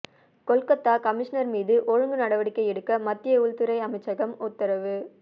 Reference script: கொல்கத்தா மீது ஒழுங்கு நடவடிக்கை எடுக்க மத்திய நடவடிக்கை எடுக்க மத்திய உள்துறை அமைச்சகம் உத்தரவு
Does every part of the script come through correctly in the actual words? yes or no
no